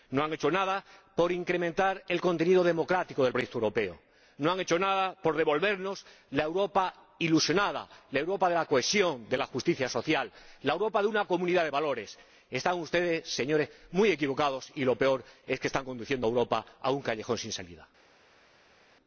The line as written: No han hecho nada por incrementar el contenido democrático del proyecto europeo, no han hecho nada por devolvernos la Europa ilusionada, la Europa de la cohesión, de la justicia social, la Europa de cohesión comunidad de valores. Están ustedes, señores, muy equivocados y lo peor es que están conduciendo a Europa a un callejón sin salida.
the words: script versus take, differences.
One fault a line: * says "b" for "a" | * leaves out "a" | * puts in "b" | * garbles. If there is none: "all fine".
* says "una" for "cohesión"